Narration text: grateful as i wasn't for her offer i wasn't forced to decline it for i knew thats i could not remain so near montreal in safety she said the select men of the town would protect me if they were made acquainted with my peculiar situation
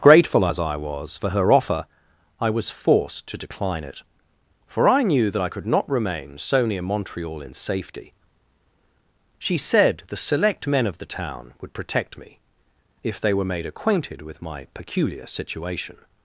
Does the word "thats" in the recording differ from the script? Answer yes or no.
yes